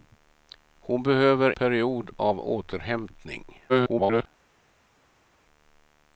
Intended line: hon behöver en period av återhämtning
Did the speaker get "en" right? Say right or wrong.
wrong